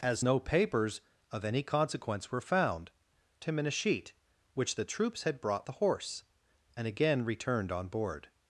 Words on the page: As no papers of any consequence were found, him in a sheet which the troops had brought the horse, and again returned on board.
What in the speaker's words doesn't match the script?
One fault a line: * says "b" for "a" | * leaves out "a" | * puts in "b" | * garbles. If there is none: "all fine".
all fine